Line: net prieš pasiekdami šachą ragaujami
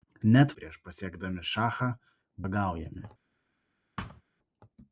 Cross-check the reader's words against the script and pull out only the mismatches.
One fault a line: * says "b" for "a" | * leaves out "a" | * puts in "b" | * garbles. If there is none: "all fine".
all fine